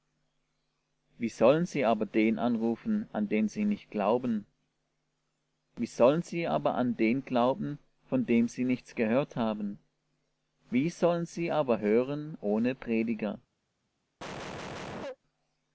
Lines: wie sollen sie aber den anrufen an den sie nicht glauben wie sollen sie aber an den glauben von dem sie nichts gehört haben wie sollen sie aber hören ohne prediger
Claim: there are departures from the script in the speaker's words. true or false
false